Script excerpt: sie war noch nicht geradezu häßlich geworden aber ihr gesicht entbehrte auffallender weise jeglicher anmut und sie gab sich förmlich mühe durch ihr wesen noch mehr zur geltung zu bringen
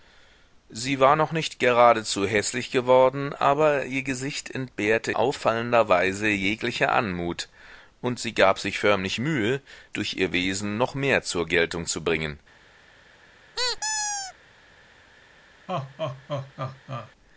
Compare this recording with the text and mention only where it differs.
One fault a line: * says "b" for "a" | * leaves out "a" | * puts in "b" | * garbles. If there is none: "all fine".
all fine